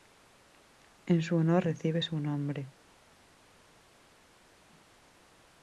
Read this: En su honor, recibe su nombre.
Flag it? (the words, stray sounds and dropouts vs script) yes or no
no